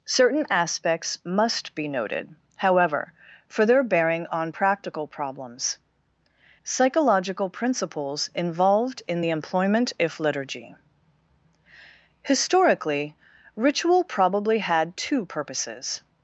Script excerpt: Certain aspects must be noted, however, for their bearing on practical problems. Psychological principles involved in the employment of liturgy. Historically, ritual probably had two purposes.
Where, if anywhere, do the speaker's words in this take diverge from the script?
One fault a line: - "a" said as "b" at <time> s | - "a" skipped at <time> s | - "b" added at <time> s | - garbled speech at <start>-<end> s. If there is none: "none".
- "of" said as "if" at 10.0 s